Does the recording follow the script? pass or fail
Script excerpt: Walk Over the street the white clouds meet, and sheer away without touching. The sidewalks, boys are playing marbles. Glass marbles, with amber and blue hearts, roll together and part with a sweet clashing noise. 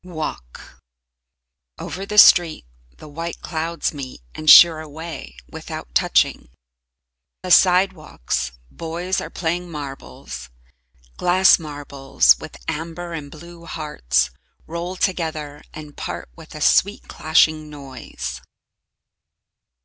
pass